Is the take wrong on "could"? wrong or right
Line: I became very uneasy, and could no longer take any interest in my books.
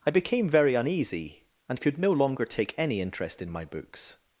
right